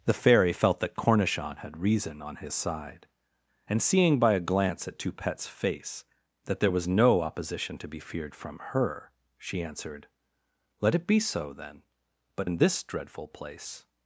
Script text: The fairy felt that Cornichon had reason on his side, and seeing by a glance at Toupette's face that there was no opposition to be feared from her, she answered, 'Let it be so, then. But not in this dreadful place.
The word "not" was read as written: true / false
false